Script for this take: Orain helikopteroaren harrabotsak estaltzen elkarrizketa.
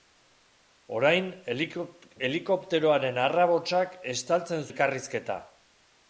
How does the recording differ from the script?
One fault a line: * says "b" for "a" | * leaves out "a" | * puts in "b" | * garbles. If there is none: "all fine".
all fine